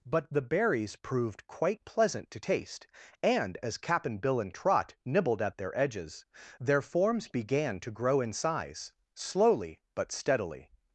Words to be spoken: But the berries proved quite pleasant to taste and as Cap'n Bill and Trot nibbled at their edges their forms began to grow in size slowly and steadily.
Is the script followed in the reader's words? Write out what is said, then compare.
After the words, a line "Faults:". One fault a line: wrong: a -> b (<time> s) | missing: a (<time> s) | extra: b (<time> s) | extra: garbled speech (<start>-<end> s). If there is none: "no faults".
But the berries proved quite pleasant to taste and as Cap'n Bill and Trot nibbled at their edges their forms began to grow in size slowly but steadily.
Faults:
wrong: and -> but (9.9 s)